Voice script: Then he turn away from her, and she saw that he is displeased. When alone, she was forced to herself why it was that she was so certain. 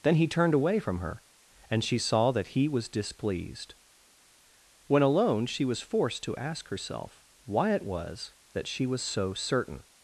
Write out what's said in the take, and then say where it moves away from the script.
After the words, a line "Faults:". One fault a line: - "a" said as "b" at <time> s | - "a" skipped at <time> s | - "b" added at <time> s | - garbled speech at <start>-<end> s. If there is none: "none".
Then he turned away from her, and she saw that he was displeased. When alone, she was forced to ask herself why it was that she was so certain.
Faults:
- "turn" said as "turned" at 0.3 s
- "is" said as "was" at 2.7 s
- "ask" added at 6.3 s